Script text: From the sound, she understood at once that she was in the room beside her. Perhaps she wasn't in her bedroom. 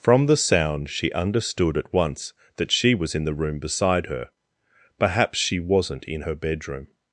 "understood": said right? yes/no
yes